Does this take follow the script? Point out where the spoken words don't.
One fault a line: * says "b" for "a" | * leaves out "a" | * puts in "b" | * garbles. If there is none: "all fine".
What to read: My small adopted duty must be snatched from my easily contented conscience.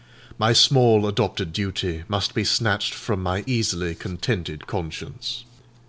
all fine